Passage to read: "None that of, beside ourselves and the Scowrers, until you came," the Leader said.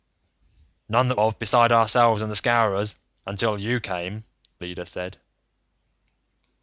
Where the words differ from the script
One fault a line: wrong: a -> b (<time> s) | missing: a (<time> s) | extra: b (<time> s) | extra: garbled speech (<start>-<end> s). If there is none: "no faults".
no faults